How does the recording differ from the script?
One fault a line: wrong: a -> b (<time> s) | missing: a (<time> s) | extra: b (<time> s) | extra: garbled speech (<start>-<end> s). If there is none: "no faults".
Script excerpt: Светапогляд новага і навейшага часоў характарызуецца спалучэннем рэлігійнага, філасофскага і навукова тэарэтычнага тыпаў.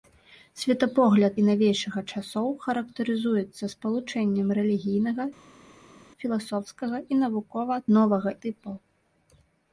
missing: новага (1.4 s)
wrong: тэарэтычнага -> новага (8.0 s)